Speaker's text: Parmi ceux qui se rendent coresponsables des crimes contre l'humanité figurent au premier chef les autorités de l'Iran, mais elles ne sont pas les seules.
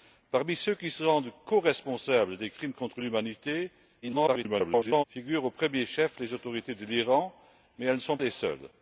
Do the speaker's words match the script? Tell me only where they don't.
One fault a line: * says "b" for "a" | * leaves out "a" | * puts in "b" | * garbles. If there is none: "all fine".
* garbles
* leaves out "pas"